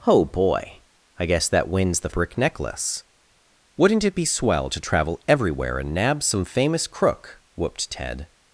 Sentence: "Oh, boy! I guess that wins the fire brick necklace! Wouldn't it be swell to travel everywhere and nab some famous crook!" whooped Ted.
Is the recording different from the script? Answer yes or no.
yes